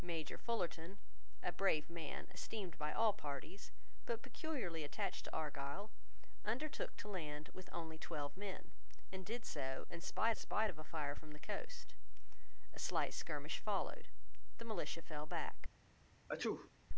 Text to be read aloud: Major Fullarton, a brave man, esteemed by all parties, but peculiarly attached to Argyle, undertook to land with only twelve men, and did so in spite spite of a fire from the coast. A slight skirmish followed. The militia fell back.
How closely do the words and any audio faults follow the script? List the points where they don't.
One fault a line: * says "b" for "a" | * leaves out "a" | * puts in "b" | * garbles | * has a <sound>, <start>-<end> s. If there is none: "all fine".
* has a sneeze, 16.3-16.7 s